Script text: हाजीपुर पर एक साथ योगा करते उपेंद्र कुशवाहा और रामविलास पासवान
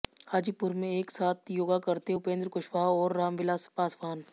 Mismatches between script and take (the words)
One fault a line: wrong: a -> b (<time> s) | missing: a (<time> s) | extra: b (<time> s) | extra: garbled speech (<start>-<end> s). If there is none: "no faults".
wrong: पर -> में (0.7 s)